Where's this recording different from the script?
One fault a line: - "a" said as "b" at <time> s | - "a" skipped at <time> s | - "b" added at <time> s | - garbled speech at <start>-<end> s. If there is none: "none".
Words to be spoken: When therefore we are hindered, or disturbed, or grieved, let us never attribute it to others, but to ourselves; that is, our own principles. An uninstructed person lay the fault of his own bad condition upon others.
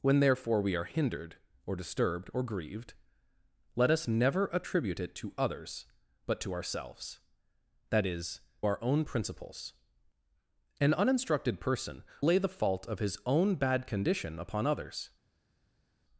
none